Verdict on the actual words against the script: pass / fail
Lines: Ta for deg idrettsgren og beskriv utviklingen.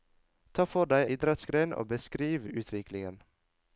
pass